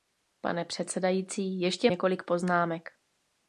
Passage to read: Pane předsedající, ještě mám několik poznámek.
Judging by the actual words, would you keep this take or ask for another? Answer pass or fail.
fail